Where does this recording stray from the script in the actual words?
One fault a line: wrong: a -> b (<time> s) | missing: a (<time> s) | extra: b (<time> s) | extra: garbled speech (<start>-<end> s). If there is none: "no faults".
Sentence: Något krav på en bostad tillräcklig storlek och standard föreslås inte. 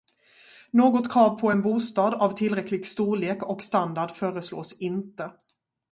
extra: av (2.1 s)